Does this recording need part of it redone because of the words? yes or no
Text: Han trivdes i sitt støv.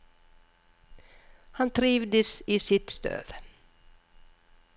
no